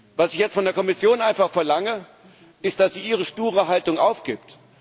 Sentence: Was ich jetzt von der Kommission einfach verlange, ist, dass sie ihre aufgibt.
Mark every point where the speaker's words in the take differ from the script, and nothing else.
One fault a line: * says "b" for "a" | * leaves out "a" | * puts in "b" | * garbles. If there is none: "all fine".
* puts in "sture Haltung"